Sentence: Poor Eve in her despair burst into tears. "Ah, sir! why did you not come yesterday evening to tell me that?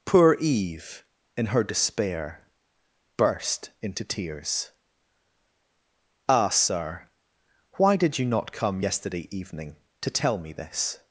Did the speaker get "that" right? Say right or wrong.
wrong